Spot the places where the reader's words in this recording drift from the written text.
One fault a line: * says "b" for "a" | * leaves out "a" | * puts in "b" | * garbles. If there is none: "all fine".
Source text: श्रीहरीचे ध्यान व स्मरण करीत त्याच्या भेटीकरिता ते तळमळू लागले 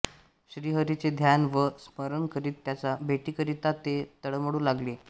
all fine